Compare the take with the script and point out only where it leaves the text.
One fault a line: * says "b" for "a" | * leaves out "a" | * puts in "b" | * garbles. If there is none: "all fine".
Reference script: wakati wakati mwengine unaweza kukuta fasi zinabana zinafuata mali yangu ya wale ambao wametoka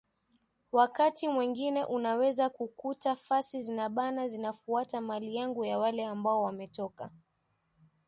* leaves out "wakati"